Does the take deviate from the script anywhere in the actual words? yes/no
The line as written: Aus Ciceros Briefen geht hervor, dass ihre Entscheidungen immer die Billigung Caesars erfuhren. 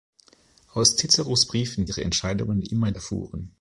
yes